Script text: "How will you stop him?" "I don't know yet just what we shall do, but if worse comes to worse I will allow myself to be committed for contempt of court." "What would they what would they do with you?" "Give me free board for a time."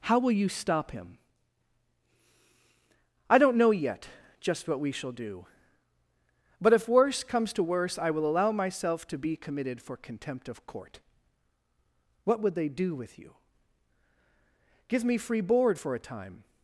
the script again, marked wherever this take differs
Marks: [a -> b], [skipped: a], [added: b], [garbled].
"How will you stop him?" "I don't know yet just what we shall do, but if worse comes to worse I will allow myself to be committed for contempt of court." "What would they [skipped: what would they] do with you?" "Give me free board for a time."